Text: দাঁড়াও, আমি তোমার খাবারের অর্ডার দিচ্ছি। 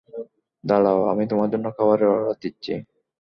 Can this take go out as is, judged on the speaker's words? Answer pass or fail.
fail